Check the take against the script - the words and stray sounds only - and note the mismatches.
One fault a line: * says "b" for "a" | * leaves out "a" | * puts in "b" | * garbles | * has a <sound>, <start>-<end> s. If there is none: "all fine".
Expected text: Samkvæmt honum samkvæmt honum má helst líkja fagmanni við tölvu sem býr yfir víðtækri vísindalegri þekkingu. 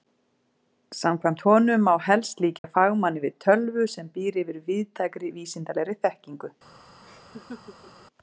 * leaves out "samkvæmt honum"
* has a dropout, 2.6-2.6 s
* has a laugh, 7.0-8.1 s